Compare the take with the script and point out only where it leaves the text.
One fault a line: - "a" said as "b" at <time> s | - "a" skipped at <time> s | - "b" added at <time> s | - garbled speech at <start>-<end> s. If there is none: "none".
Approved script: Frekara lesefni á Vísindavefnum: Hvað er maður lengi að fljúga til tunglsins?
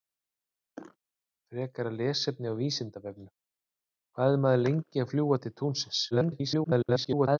- garbled speech at 6.1-7.4 s